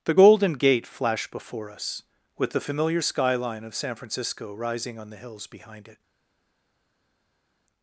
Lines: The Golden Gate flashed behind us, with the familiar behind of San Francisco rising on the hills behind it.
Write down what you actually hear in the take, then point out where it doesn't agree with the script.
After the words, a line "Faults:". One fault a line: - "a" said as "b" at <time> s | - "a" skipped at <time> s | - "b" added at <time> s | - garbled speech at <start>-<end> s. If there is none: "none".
The Golden Gate flashed before us, with the familiar skyline of San Francisco rising on the hills behind it.
Faults:
- "behind" said as "before" at 1.3 s
- "behind" said as "skyline" at 3.0 s